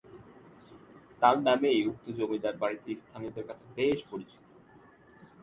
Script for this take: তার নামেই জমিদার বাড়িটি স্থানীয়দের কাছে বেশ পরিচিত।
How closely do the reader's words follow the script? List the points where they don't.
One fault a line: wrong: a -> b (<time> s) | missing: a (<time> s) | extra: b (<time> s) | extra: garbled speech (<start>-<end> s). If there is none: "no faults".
extra: উক্ত (1.9 s)